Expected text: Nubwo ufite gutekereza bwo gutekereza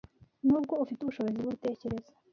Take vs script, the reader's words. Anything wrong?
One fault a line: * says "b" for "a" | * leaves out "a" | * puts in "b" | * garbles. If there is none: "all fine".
* says "ubushobozi" for "gutekereza"